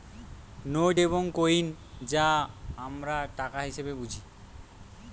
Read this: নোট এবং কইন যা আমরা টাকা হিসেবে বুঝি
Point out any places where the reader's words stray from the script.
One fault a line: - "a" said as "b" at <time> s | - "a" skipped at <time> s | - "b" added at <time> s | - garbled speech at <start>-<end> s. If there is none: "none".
none